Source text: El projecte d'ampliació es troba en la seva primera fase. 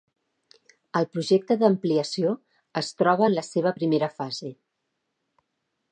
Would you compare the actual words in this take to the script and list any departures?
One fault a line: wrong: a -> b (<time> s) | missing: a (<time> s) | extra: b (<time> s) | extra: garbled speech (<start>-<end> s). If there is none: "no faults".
no faults